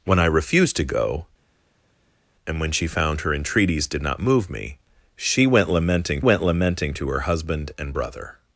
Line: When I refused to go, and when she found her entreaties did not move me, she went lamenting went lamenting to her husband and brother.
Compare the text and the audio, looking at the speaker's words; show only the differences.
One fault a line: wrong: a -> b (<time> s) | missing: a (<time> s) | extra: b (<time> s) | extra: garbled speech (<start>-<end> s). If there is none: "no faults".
no faults